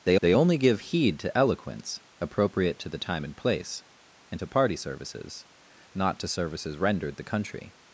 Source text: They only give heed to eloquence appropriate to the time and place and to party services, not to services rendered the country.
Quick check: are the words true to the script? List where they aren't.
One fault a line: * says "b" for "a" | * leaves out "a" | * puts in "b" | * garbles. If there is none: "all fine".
* puts in "they"